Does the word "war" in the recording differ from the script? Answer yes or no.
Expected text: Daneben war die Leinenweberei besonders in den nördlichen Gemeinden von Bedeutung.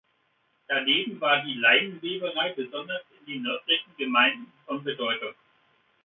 no